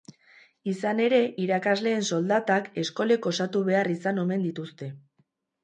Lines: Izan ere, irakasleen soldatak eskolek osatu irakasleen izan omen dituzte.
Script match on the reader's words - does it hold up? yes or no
no